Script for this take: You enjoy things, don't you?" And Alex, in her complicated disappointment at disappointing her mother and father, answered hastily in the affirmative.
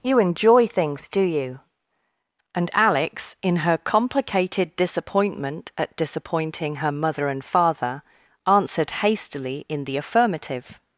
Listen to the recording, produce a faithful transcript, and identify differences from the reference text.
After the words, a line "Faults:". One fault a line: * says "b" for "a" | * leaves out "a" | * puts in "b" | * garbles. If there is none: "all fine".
You enjoy things, do you?" And Alex, in her complicated disappointment at disappointing her mother and father, answered hastily in the affirmative.
Faults:
* says "do" for "don't"